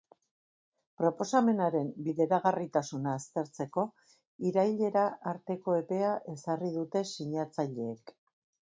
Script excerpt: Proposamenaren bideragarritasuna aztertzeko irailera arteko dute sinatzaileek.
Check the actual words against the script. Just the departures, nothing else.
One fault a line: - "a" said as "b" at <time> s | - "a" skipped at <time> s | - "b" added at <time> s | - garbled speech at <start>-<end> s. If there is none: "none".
- "epea ezarri" added at 5.8 s